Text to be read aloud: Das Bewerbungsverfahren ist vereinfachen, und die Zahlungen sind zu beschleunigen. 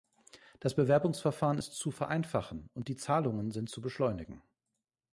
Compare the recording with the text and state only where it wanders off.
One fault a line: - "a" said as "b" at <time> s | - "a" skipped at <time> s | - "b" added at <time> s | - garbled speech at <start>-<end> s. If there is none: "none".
- "zu" added at 1.7 s